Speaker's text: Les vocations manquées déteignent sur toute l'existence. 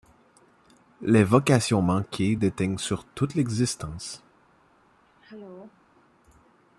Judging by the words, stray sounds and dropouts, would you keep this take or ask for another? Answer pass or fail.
fail